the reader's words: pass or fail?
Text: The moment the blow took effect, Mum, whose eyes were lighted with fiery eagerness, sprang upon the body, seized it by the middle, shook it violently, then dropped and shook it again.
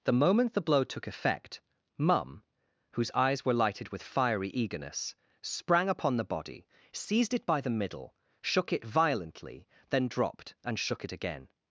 pass